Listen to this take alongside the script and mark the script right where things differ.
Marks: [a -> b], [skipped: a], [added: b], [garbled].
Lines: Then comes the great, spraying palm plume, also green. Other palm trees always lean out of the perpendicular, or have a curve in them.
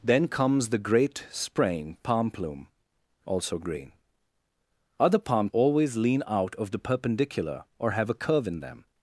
Then comes the great, spraying palm plume, also green. Other palm [skipped: trees] always lean out of the perpendicular, or have a curve in them.